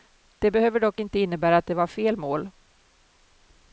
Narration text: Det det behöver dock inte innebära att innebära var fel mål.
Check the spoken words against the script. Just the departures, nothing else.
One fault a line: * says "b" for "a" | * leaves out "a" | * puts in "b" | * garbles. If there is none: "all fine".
* leaves out "det"
* says "det" for "innebära"